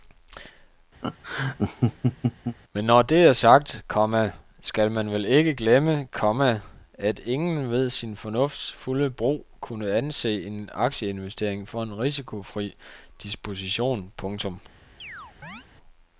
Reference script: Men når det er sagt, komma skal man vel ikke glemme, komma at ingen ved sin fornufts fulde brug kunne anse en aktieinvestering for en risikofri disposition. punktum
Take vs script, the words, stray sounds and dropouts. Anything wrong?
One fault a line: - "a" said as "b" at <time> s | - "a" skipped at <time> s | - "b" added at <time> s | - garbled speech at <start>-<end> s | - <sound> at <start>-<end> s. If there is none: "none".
- laugh at 1.0-2.6 s
- chirp at 15.0-15.7 s